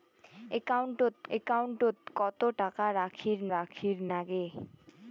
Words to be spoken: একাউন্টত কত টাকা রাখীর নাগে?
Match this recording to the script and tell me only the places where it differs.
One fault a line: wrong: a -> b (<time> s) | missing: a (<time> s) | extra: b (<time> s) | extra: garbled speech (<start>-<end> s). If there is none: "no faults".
extra: একাউন্টত (1.4 s)
extra: রাখীর (3.5 s)